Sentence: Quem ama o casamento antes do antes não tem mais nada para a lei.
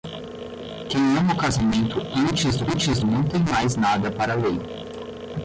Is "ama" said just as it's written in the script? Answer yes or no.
yes